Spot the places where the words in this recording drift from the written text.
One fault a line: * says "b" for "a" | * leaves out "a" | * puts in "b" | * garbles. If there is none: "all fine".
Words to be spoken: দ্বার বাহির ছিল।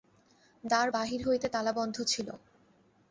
* puts in "হইতে তালাবন্ধ"